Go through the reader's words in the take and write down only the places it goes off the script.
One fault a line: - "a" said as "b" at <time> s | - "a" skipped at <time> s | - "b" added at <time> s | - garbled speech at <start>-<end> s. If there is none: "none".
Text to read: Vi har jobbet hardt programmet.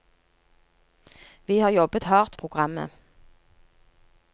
none